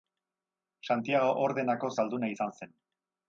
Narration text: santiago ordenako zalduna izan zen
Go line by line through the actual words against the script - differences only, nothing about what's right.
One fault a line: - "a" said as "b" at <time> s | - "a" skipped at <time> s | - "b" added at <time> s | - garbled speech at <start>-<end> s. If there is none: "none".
none